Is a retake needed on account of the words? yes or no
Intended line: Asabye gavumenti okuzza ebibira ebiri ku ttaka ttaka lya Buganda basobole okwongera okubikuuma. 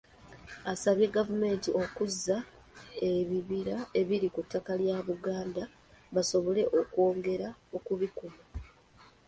yes